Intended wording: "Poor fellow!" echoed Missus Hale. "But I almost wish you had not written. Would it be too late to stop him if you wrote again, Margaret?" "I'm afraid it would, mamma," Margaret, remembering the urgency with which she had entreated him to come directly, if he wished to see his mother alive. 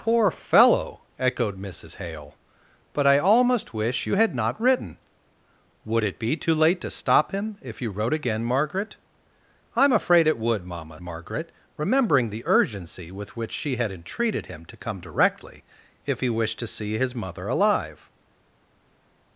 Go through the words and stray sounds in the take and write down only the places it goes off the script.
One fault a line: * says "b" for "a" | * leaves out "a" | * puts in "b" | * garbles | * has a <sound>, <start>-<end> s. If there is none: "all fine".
all fine